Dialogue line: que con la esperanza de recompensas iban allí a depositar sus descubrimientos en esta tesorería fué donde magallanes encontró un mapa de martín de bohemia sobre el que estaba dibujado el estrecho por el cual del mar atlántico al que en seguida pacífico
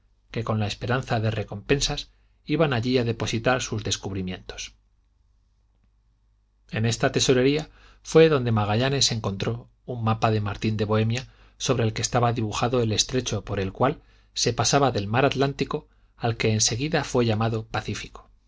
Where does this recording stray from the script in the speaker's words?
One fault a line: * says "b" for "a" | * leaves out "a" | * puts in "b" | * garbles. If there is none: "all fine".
* puts in "se pasaba"
* puts in "fué llamado"